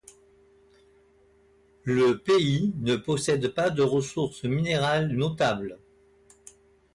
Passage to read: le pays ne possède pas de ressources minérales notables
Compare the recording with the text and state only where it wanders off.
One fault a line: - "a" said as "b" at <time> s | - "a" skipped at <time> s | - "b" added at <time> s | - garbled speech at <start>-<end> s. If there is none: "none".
none